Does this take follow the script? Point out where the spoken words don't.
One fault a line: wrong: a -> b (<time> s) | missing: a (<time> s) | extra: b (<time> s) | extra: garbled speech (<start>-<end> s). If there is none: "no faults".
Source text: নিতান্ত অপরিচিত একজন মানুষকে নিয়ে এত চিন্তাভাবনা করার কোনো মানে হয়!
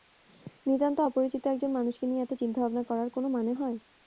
no faults